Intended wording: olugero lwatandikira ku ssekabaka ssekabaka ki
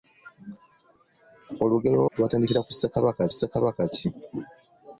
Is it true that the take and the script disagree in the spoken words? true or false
false